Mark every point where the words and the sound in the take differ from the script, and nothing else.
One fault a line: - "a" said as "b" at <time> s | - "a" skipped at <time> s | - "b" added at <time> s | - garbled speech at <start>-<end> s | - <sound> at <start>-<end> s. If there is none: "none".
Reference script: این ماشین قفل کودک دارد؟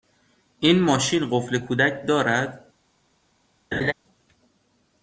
- laugh at 3.7-3.9 s